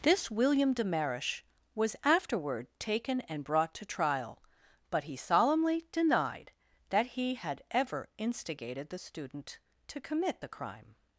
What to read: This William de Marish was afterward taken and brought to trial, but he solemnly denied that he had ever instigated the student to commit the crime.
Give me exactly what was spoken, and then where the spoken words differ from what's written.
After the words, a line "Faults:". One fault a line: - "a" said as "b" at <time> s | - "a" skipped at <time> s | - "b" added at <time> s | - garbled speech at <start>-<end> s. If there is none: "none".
This William de Marish was afterward taken and brought to trial, but he solemnly denied that he had ever instigated the student to commit the crime.
Faults:
none